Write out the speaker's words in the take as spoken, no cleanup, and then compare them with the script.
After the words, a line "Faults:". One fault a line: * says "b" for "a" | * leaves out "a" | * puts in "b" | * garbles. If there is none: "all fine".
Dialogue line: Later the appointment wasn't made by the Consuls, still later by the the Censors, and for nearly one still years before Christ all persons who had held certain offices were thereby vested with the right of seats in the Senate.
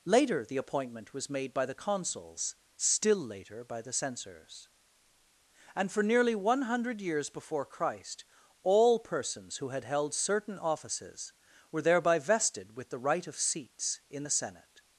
Later the appointment was made by the Consuls, still later by the Censors, and for nearly one hundred years before Christ all persons who had held certain offices were thereby vested with the right of seats in the Senate.
Faults:
* says "was" for "wasn't"
* leaves out "the"
* says "hundred" for "still"